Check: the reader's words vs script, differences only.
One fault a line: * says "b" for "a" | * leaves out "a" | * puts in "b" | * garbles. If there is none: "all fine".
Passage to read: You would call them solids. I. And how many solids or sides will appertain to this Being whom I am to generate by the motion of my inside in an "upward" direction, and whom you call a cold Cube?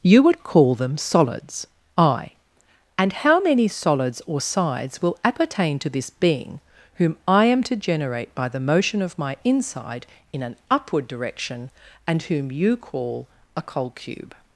all fine